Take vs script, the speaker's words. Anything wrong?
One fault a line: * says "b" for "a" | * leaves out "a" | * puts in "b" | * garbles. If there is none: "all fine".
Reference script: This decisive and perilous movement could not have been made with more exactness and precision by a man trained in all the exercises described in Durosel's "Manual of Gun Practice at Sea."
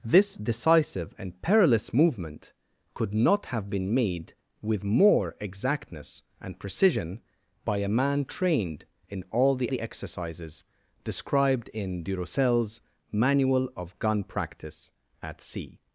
* puts in "the"